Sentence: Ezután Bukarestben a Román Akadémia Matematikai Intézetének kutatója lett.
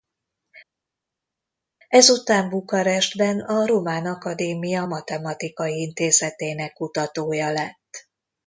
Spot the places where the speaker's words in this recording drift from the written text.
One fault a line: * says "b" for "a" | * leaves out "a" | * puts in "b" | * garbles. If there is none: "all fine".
all fine